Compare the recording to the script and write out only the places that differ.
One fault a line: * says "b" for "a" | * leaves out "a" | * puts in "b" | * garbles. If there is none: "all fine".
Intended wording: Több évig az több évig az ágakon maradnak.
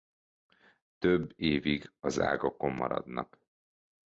* leaves out "több évig az"